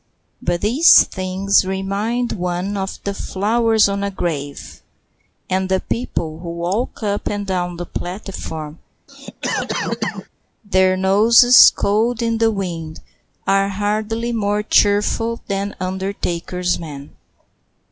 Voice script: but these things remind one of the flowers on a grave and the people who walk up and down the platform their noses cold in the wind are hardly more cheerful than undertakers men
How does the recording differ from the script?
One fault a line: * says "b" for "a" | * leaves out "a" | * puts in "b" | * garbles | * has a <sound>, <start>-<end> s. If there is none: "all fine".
* has a cough, 9.1-10.3 s